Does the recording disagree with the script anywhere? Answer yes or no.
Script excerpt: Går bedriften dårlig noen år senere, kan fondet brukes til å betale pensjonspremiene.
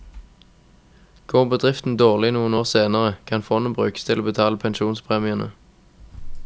no